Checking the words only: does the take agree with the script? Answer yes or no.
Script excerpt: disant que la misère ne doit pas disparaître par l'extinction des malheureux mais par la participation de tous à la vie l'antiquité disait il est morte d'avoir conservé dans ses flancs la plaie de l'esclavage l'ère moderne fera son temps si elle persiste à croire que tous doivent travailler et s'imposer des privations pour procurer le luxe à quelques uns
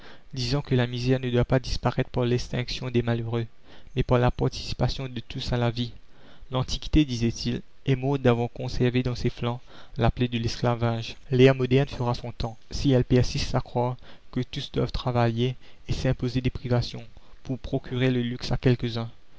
yes